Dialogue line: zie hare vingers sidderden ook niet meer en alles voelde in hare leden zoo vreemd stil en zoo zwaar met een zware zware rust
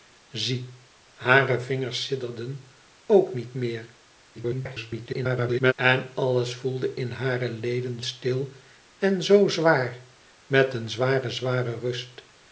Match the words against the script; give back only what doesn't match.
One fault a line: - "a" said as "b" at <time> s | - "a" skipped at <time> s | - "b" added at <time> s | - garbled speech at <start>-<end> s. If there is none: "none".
- garbled speech at 4.3-5.7 s
- "zoo vreemd" skipped at 8.0 s